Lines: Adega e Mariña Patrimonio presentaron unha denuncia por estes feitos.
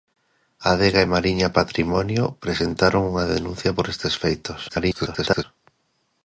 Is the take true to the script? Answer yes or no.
no